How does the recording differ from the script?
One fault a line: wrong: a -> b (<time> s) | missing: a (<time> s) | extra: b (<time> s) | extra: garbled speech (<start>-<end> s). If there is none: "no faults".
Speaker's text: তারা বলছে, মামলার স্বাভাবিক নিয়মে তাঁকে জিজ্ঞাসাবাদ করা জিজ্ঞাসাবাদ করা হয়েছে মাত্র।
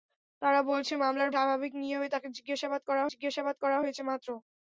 no faults